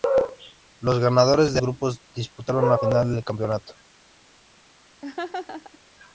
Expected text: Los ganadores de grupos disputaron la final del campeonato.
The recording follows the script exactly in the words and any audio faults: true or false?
false